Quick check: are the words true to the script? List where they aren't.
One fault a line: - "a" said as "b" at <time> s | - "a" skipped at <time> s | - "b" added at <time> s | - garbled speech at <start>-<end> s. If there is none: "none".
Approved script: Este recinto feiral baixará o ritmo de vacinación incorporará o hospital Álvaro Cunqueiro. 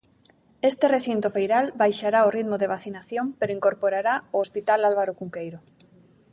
- "pero" added at 3.4 s